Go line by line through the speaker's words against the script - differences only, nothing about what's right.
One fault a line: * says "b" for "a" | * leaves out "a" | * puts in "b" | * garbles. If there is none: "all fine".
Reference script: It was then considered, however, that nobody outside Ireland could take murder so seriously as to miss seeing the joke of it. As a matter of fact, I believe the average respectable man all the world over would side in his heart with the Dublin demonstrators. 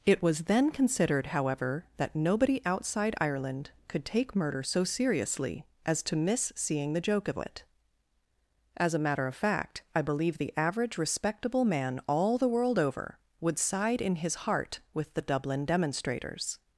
all fine